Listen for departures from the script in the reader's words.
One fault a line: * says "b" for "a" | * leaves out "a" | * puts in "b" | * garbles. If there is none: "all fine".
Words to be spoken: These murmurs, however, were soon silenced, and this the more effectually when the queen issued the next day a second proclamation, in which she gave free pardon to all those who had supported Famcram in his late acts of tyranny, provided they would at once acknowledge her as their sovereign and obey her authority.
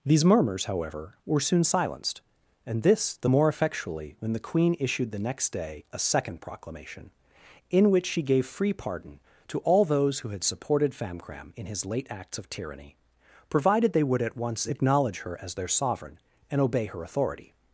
all fine